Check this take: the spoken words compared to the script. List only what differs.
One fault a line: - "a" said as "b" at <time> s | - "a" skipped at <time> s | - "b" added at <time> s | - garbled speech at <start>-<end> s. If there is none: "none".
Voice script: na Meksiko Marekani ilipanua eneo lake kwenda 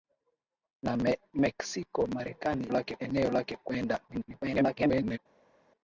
- "ilipanua" said as "lake" at 2.7 s
- garbled speech at 4.1-5.2 s